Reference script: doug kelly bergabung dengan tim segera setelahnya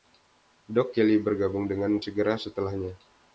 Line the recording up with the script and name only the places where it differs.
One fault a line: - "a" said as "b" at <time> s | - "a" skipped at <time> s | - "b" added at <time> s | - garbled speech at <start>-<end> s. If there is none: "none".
- "tim" skipped at 2.0 s